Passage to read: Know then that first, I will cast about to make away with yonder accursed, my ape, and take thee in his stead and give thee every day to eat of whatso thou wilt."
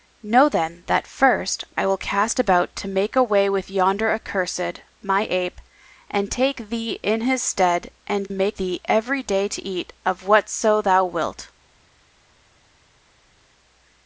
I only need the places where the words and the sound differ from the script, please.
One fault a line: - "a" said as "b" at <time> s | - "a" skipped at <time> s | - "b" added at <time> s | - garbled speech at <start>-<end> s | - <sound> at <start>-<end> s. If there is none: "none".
- "give" said as "make" at 8.3 s